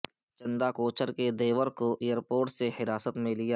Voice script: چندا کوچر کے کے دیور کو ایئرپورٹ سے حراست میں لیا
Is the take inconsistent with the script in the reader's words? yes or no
yes